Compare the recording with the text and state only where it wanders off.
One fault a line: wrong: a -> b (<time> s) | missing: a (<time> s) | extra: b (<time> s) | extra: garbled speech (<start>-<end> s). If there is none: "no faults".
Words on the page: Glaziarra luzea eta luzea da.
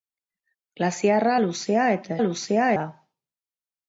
no faults